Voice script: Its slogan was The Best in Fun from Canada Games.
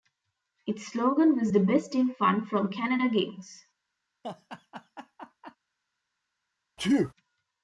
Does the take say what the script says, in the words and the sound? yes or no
no